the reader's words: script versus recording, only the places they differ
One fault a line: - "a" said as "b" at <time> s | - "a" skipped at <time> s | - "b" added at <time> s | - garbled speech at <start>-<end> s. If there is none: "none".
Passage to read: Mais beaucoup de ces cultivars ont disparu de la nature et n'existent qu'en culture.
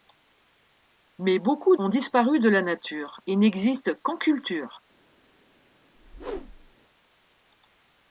- "de ces cultivars" skipped at 1.8 s